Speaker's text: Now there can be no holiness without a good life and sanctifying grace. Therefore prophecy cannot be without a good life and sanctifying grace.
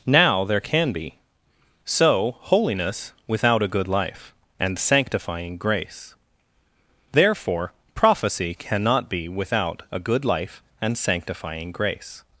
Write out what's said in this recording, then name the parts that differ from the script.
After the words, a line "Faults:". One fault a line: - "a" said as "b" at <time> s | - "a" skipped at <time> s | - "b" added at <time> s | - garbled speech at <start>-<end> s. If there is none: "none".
Now there can be so holiness without a good life and sanctifying grace. Therefore prophecy cannot be without a good life and sanctifying grace.
Faults:
- "no" said as "so" at 1.9 s